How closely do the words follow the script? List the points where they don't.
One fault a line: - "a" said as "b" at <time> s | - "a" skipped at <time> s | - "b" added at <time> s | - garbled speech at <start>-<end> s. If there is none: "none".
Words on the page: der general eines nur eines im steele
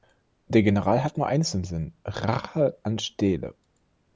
- "eines" said as "hat" at 1.0 s
- "sinn rache an" added at 1.6 s